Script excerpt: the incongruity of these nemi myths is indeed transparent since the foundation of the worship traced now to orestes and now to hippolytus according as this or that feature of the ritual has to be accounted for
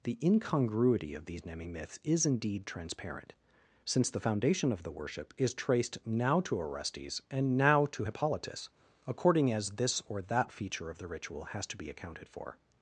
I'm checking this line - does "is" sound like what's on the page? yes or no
yes